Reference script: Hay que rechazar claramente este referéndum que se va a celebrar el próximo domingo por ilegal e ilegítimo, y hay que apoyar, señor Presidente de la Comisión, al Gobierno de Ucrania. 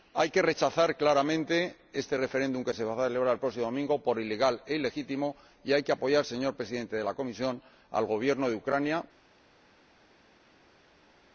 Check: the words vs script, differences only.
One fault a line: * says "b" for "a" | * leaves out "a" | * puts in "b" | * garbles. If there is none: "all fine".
all fine